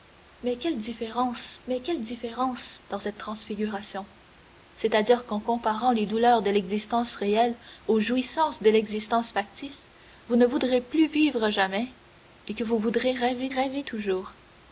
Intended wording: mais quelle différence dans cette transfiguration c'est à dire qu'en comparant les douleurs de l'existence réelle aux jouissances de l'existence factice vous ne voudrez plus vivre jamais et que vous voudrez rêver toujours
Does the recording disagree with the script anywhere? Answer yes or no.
yes